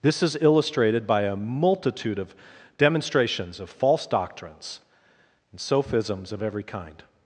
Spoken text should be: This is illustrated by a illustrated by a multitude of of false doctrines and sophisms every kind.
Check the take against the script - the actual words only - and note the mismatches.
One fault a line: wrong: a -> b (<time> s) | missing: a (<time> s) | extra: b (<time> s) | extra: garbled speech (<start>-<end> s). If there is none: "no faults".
missing: illustrated by a (1.4 s)
extra: demonstrations (2.8 s)
extra: of (6.3 s)